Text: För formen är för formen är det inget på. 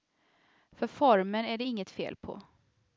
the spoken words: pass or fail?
fail